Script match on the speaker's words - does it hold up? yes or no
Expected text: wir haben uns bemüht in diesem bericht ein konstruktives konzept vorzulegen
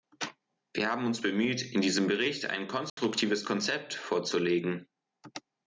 yes